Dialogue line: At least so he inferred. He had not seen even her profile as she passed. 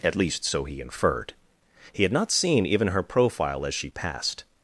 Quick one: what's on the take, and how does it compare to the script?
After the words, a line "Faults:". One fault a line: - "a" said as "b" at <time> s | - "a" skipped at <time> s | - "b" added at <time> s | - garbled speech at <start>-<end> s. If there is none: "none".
At least so he inferred. He had not seen even her profile as she passed.
Faults:
none